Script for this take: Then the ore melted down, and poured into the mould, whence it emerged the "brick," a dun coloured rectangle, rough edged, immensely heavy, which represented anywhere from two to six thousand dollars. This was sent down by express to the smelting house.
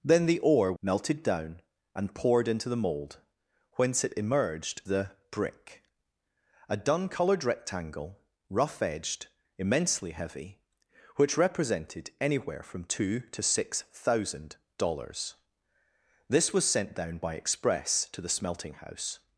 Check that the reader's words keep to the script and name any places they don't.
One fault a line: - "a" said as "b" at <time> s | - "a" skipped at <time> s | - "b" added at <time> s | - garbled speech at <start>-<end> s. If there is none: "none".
none